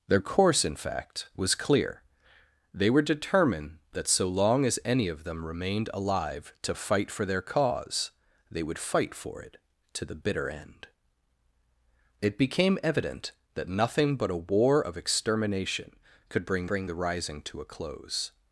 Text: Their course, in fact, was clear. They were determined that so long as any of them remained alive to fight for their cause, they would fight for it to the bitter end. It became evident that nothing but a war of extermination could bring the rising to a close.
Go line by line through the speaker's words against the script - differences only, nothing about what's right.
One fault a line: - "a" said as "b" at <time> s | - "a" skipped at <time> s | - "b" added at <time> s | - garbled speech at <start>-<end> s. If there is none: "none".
- "bring" added at 16.7 s